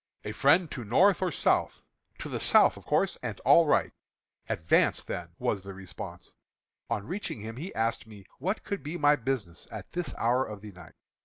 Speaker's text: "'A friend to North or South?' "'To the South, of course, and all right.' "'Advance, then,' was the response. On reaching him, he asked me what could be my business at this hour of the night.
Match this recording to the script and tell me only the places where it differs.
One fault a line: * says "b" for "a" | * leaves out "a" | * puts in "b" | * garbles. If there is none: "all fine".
all fine